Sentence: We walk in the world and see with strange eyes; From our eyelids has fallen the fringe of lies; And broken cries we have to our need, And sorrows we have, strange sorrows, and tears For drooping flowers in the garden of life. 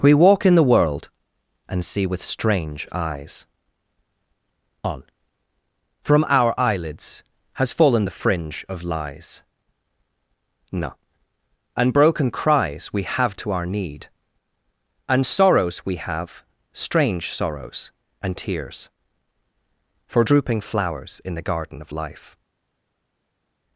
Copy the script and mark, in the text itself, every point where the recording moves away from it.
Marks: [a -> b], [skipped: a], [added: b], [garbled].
We walk in the world and see with strange eyes; [added: on] From our eyelids has fallen the fringe of lies; [added: no] And broken cries we have to our need, And sorrows we have, strange sorrows, and tears For drooping flowers in the garden of life.